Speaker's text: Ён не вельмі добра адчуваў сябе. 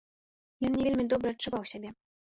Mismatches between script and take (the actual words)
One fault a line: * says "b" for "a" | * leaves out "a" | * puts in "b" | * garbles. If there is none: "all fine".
all fine